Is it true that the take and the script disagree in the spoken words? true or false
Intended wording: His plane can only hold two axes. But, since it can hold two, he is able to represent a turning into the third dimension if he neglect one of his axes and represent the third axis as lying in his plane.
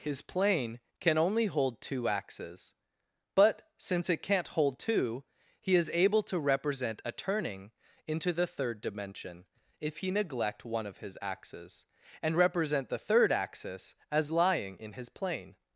true